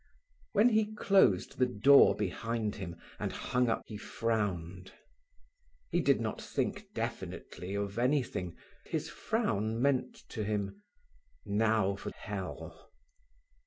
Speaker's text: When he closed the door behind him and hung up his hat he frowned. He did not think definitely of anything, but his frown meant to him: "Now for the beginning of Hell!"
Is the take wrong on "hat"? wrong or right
wrong